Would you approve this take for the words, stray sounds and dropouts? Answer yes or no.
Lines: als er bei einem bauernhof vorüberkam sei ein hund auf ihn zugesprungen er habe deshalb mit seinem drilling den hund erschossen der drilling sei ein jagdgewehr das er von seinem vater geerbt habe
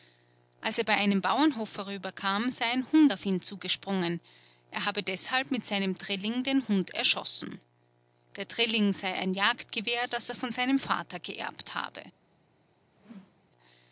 no